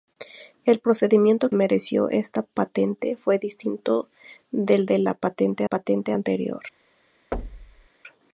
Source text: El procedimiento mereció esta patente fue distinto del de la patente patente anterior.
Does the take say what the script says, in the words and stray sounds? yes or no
no